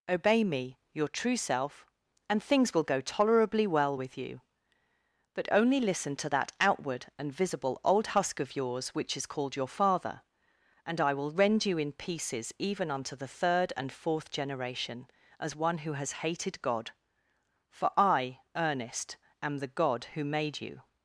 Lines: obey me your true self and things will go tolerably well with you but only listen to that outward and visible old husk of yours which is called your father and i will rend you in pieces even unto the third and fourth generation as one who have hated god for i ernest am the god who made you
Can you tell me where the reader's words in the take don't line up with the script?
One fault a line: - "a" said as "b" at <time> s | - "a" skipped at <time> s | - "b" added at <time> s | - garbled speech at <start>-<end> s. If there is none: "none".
- "have" said as "has" at 15.9 s